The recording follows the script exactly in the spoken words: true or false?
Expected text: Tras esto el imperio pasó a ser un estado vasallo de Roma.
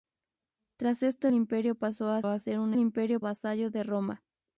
false